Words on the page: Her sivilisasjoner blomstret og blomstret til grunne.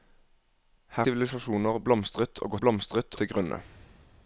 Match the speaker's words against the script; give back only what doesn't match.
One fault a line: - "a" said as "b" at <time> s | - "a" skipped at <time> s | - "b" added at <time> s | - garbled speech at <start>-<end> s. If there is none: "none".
none